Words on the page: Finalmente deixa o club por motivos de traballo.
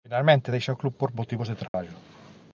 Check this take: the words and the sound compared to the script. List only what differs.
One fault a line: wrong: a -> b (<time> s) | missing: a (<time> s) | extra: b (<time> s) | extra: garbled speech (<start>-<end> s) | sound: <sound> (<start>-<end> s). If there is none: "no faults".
sound: dropout (1.7-1.7 s)